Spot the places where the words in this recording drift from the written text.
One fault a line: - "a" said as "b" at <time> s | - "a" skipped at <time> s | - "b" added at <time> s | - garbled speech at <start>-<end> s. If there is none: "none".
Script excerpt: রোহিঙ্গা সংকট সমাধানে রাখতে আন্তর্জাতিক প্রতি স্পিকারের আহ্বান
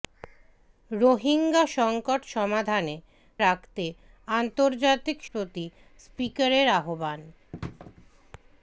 none